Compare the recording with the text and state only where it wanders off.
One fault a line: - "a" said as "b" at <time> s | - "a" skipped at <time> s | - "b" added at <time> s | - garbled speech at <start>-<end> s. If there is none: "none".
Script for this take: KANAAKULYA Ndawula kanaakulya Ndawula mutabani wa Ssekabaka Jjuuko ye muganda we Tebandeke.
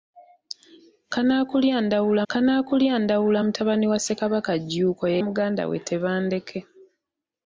none